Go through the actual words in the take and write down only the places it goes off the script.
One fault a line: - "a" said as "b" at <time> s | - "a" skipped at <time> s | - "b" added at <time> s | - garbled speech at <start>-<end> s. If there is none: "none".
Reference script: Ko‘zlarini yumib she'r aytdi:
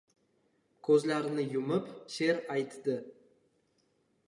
none